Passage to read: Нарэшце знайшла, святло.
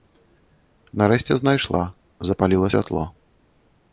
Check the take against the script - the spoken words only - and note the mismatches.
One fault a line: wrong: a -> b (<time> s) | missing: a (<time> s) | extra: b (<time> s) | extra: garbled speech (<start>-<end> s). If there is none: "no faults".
extra: запаліла (2.3 s)